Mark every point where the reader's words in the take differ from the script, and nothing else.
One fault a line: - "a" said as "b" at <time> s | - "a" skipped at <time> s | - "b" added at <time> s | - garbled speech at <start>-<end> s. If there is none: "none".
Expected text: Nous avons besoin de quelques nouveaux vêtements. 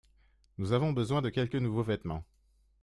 none